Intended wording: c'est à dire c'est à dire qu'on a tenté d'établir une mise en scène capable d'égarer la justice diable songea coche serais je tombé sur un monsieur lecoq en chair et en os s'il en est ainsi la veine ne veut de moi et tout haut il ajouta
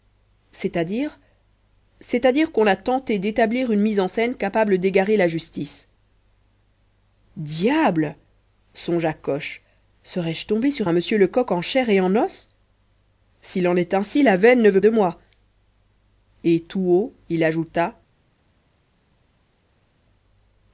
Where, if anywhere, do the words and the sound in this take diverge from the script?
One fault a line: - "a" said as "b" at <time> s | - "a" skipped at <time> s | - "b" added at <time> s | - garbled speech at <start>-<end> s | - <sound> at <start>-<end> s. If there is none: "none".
none